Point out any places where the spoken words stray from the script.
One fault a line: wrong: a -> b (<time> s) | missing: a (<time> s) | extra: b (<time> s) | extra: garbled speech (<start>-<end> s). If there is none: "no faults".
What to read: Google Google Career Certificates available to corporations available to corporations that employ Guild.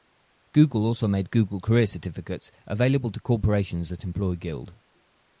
extra: also made (0.8 s)
missing: available to corporations (3.9 s)